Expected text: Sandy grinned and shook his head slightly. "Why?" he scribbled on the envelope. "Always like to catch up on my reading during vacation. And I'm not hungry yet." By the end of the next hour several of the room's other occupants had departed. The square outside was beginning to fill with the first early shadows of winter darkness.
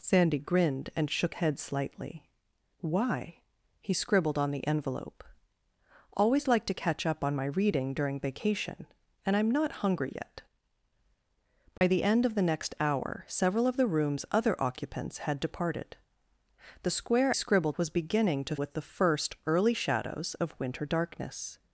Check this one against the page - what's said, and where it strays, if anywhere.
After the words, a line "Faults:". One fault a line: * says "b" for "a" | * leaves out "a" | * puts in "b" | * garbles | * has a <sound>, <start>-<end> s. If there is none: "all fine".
Sandy grinned and shook head slightly. "Why?" he scribbled on the envelope. "Always like to catch up on my reading during vacation. And I'm not hungry yet." By the end of the next hour several of the room's other occupants had departed. The square scribbled was beginning to with the first early shadows of winter darkness.
Faults:
* leaves out "his"
* has a dropout, 11.8-11.8 s
* says "scribbled" for "outside"
* leaves out "fill"